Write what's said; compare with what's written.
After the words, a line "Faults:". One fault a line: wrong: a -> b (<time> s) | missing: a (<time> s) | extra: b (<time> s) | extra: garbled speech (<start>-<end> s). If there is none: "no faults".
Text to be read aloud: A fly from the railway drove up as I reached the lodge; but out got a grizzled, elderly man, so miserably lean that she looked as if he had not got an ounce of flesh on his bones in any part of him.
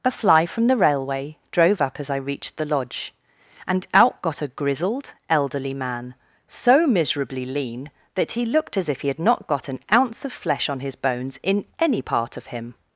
A fly from the railway drove up as I reached the lodge; and out got a grizzled, elderly man, so miserably lean that he looked as if he had not got an ounce of flesh on his bones in any part of him.
Faults:
wrong: but -> and (3.7 s)
wrong: she -> he (8.3 s)